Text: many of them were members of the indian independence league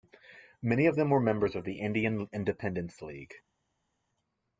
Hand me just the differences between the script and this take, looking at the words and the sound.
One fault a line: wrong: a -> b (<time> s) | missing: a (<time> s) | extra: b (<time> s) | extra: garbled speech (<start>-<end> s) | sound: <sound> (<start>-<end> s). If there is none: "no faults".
no faults